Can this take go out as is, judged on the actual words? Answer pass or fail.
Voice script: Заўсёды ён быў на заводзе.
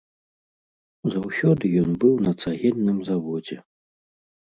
fail